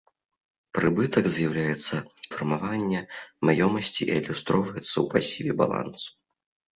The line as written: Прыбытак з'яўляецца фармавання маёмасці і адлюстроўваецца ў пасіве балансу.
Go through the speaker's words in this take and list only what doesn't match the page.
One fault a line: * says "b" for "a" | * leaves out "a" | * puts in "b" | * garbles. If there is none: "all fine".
all fine